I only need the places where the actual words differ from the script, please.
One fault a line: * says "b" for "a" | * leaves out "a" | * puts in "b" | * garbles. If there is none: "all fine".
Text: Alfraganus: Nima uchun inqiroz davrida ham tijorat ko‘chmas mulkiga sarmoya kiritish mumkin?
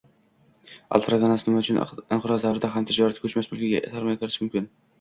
all fine